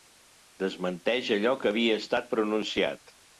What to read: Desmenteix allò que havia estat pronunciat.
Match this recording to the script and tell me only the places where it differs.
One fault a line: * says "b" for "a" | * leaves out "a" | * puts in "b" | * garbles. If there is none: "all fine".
all fine